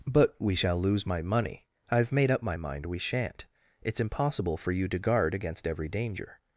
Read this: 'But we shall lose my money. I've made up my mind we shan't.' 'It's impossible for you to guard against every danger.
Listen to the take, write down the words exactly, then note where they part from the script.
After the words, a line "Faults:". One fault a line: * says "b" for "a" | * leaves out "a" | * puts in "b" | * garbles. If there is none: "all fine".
'But we shall lose my money. I've made up my mind we shan't.' 'It's impossible for you to guard against every danger.
Faults:
all fine